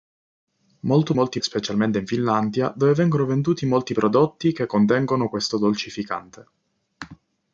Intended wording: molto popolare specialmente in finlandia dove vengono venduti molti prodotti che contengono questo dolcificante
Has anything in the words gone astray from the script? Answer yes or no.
yes